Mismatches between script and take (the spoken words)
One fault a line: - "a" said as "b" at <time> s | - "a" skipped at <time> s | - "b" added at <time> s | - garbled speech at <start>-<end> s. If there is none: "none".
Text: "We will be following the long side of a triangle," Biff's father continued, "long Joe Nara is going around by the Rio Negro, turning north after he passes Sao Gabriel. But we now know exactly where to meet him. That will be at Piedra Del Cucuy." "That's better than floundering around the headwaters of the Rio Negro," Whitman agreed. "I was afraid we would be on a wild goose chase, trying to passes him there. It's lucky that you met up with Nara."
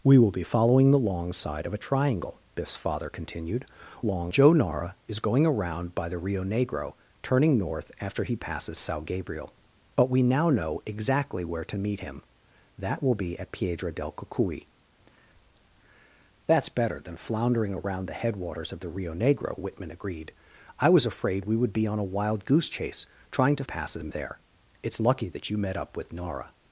none